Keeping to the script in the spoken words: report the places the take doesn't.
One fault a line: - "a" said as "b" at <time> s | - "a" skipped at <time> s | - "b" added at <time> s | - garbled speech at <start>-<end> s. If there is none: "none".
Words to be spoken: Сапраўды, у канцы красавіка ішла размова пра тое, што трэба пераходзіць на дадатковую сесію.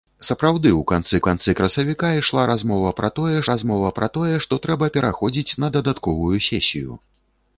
- "канцы" added at 1.3 s
- "размова пра тое" added at 3.5 s